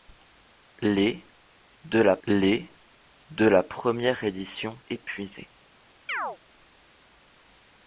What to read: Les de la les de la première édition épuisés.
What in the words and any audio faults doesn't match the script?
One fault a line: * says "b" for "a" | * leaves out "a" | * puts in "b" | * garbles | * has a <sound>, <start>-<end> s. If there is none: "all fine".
* has a chirp, 6.1-6.4 s